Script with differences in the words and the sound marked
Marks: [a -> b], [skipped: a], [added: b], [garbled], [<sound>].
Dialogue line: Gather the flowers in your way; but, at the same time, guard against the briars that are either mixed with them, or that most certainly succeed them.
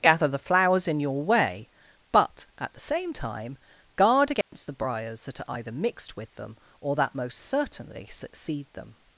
Gather the flowers in your way; but, at the same time, guard against [dropout] the briars that are either mixed with them, or that most certainly succeed them.